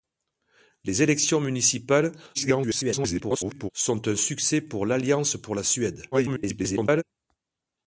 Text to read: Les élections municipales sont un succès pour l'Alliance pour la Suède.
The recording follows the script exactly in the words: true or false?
false